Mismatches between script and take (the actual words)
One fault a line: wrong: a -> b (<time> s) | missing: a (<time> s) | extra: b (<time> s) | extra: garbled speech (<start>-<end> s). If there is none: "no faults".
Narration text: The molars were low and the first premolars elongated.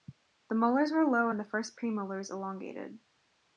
no faults